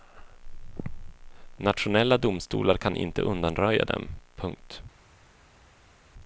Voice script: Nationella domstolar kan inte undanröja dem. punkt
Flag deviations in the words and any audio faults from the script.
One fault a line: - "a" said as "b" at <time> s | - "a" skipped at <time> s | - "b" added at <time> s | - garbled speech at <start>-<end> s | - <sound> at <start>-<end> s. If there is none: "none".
none